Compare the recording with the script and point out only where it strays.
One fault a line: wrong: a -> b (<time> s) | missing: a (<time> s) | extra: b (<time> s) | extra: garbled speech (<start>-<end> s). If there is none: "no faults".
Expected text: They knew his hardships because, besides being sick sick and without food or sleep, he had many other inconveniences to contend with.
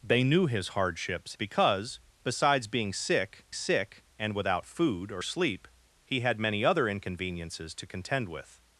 no faults